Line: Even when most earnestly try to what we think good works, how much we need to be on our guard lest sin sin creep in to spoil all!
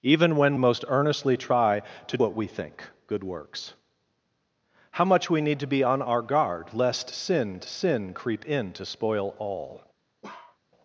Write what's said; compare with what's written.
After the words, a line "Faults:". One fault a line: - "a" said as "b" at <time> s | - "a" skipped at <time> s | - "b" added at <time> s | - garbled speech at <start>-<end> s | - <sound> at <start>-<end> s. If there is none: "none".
Even when most earnestly try to what we think good works, how much we need to be on our guard lest sin sin creep in to spoil all!
Faults:
- bark at 10.2-10.6 s